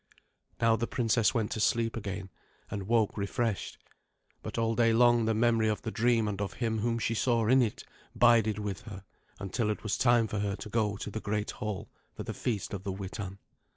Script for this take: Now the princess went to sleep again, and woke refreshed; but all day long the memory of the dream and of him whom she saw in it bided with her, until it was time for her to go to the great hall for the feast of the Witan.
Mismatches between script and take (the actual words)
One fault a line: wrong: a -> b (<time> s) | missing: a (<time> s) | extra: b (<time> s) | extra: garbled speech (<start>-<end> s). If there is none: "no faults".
no faults